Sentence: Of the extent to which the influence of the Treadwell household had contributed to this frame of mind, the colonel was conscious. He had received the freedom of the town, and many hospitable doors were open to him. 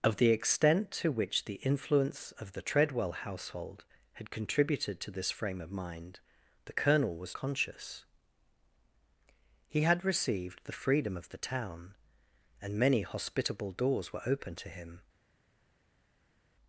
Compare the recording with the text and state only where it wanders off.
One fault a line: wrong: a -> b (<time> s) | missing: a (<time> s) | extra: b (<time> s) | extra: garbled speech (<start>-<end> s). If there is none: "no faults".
no faults